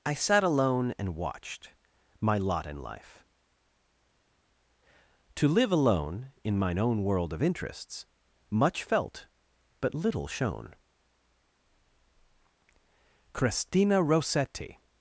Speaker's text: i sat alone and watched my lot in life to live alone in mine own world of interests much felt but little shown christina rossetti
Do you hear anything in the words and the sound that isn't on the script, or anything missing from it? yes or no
no